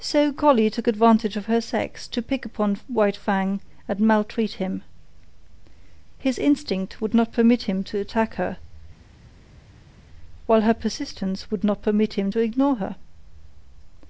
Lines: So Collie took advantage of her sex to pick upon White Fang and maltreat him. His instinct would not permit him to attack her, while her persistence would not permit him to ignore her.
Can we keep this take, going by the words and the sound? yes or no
yes